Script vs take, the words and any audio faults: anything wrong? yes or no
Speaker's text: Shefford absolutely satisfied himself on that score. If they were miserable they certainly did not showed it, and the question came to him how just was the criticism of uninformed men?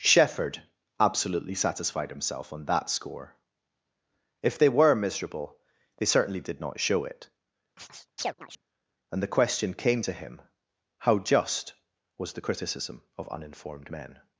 yes